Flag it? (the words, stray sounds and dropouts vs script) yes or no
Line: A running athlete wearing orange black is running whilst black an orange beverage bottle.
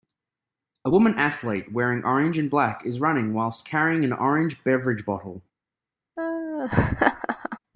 yes